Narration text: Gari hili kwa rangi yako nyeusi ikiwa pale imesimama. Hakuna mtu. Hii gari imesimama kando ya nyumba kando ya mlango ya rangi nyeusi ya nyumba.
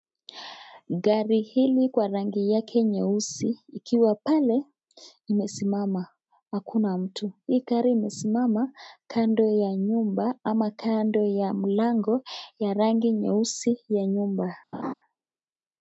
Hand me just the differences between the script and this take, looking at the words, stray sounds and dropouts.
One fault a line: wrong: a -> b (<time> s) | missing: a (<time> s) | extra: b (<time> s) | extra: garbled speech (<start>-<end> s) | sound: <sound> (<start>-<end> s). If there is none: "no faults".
wrong: yako -> yake (2.5 s)
extra: ama (10.4 s)
sound: laugh (14.7-14.9 s)